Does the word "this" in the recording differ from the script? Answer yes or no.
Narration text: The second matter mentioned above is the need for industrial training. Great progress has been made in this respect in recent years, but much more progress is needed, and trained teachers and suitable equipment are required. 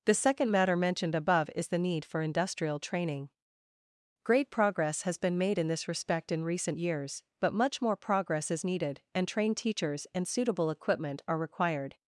no